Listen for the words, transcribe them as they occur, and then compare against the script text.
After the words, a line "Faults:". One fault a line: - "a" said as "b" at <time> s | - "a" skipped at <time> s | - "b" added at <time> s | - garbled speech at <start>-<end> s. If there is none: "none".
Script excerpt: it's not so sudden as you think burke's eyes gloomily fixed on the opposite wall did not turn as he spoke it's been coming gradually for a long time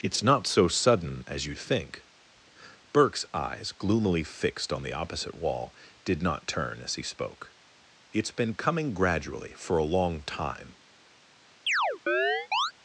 it's not so sudden as you think burke's eyes gloomily fixed on the opposite wall did not turn as he spoke it's been coming gradually for a long time
Faults:
none